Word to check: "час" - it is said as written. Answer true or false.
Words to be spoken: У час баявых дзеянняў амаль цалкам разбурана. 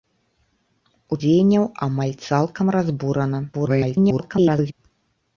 false